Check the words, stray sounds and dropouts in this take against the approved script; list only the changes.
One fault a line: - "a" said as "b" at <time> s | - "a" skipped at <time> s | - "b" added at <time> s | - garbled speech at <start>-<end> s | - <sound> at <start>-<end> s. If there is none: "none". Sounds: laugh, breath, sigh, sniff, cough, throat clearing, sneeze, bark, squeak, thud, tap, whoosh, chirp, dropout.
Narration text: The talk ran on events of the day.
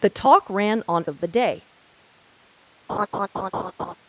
- "events" skipped at 1.1 s
- laugh at 2.9-3.9 s